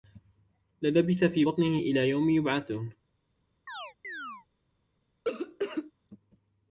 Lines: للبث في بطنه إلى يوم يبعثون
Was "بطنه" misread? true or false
false